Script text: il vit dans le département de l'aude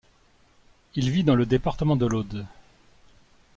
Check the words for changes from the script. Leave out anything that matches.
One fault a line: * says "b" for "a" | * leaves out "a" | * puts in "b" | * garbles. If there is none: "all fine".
all fine